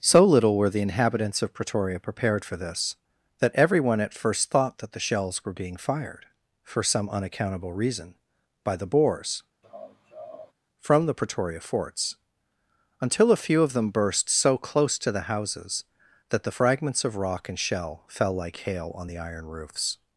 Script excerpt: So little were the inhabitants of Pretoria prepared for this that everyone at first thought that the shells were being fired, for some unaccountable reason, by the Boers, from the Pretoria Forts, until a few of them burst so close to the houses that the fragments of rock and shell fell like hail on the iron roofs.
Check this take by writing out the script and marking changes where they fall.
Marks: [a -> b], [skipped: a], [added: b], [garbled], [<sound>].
So little were the inhabitants of Pretoria prepared for this that everyone at first thought that the shells were being fired, for some unaccountable reason, by the Boers, [laugh] from the Pretoria Forts, until a few of them burst so close to the houses that the fragments of rock and shell fell like hail on the iron roofs.